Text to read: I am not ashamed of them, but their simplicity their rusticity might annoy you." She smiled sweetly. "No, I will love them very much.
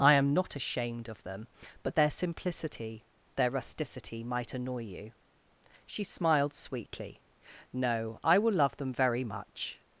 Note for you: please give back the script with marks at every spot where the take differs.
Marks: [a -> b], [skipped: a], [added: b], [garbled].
I am not ashamed of them, but their simplicity their rusticity might annoy you." She smiled sweetly. "No, I will love them very much.